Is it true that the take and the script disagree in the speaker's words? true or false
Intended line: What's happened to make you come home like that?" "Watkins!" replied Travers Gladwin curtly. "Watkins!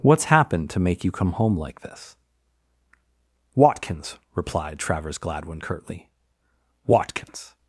true